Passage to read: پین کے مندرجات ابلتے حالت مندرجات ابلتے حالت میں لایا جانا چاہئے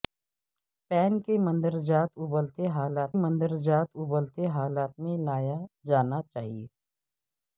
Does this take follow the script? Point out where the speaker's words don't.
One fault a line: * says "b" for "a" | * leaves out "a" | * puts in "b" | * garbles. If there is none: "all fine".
all fine